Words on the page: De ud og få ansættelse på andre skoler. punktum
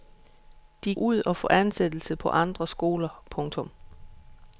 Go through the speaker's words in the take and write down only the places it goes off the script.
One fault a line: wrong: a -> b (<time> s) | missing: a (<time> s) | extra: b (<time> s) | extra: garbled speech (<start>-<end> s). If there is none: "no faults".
no faults